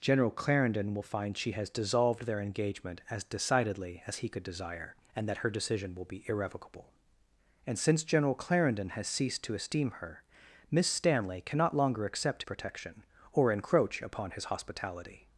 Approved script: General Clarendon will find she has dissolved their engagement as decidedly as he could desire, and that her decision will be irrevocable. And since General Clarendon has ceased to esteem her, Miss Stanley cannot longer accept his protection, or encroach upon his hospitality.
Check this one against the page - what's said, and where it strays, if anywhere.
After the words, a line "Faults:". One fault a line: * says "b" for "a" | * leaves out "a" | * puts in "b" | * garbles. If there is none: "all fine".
General Clarendon will find she has dissolved their engagement as decidedly as he could desire, and that her decision will be irrevocable. And since General Clarendon has ceased to esteem her, Miss Stanley cannot longer accept protection, or encroach upon his hospitality.
Faults:
* leaves out "his"